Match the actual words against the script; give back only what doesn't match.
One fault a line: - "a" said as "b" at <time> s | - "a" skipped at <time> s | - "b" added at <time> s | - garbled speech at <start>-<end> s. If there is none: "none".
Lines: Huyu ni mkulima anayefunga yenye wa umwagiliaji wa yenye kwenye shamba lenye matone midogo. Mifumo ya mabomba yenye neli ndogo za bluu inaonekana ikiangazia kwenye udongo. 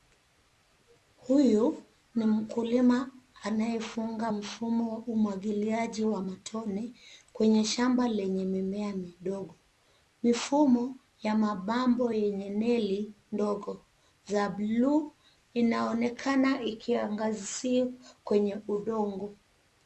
- "yenye" said as "mfumo" at 4.3 s
- "yenye" said as "matone" at 6.2 s
- "matone" said as "mimea" at 8.4 s